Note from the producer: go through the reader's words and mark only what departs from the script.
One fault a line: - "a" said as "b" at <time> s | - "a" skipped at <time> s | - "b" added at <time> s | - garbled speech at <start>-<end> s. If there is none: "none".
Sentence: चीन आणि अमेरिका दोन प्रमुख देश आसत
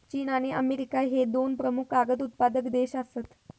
- "ह्ये" added at 1.0 s
- "कागद उत्पादक" added at 1.9 s